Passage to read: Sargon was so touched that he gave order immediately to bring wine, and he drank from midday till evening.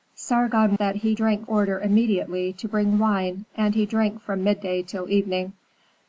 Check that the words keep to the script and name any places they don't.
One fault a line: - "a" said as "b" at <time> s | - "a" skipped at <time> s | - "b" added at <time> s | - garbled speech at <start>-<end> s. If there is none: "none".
- "was so touched" skipped at 0.8 s
- "gave" said as "drank" at 1.1 s